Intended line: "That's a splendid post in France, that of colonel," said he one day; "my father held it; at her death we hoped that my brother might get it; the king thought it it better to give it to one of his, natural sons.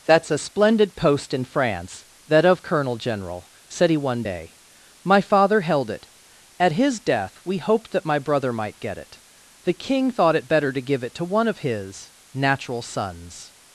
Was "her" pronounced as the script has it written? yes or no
no